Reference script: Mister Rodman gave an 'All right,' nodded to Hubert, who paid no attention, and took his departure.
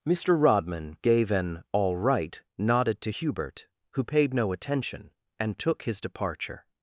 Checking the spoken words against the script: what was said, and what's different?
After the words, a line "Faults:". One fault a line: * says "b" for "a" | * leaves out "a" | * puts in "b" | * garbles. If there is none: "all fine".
Mister Rodman gave an 'All right,' nodded to Hubert, who paid no attention, and took his departure.
Faults:
all fine